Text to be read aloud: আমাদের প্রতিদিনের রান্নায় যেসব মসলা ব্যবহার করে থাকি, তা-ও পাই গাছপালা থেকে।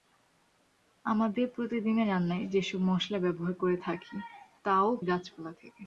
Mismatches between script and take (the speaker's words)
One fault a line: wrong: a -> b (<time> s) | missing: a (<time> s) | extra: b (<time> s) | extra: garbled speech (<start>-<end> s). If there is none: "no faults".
missing: পাই (4.9 s)